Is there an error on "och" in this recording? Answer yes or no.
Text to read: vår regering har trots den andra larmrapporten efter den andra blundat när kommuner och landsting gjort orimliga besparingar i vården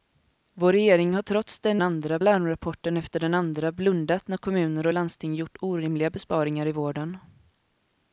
no